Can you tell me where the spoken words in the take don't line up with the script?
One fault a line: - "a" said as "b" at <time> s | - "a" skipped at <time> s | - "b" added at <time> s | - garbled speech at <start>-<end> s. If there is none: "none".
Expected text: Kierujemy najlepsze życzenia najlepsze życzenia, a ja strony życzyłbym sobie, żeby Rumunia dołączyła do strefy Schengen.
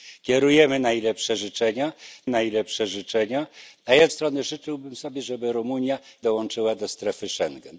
none